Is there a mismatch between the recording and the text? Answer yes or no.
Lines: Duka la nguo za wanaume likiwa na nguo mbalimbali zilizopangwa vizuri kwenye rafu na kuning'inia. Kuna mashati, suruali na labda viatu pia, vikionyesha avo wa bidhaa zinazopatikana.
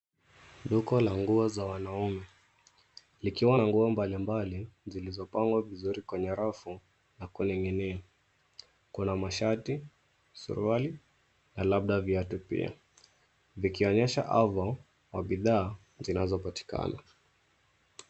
no